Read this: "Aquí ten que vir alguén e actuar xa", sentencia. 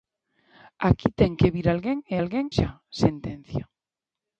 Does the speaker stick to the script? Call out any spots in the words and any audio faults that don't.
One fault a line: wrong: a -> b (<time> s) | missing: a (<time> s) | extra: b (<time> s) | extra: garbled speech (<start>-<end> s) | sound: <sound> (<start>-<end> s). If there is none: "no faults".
wrong: actuar -> alguén (2.2 s)